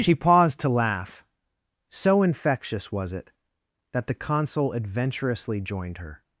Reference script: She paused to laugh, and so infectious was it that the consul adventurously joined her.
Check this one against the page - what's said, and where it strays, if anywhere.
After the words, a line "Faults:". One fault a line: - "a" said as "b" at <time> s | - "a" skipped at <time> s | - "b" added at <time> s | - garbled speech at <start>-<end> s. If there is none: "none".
She paused to laugh, so infectious was it that the consul adventurously joined her.
Faults:
- "and" skipped at 1.2 s